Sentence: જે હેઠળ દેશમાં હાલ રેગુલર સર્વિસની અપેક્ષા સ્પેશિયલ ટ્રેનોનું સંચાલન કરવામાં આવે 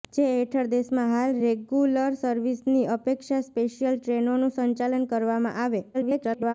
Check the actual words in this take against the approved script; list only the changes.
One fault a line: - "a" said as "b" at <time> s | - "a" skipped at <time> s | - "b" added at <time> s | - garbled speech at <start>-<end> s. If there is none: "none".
- garbled speech at 5.9-6.5 s